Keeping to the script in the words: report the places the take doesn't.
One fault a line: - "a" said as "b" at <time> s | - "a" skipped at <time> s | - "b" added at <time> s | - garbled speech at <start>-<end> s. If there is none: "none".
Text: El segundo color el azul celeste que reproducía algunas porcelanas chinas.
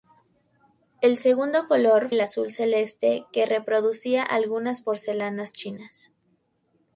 none